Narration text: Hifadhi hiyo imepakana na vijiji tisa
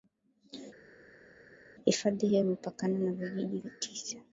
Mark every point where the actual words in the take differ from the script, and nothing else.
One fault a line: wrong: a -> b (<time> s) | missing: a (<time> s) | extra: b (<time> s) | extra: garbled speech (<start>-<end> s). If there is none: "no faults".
no faults